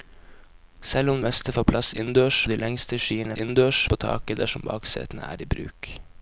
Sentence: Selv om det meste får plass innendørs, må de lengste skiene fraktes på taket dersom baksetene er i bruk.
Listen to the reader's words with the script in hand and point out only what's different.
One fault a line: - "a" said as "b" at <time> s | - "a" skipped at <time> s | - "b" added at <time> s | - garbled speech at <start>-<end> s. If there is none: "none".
- "det" skipped at 1.2 s
- "må" skipped at 2.4 s
- "fraktes" said as "innendørs" at 3.4 s